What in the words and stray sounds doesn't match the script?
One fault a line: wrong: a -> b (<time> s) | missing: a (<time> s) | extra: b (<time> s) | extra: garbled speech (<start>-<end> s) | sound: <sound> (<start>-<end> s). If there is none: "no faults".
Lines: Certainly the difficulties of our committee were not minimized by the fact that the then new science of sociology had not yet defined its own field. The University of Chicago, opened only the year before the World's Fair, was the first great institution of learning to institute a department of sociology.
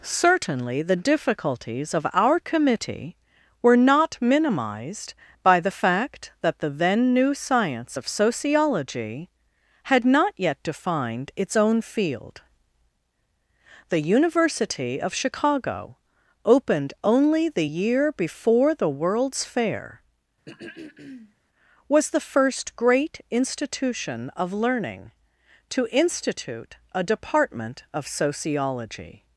sound: throat clearing (20.5-21.3 s)